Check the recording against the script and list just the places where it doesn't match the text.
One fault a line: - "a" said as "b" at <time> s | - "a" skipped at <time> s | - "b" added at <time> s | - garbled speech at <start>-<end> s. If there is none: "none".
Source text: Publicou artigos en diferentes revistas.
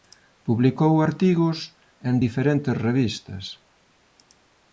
none